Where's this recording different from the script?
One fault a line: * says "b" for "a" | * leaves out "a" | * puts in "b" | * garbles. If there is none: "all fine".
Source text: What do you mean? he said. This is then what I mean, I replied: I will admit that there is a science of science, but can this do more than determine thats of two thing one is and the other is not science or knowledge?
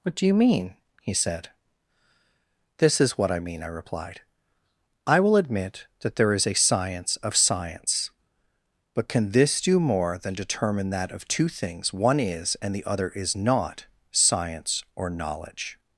* leaves out "then"
* says "that" for "thats"
* says "things" for "thing"